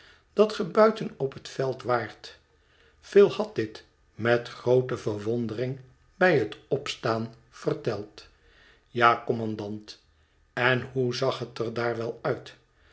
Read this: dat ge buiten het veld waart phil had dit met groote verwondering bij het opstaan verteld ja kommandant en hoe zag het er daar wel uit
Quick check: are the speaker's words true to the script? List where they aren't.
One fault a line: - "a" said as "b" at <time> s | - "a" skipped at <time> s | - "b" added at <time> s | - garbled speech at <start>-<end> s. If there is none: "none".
- "op" added at 1.2 s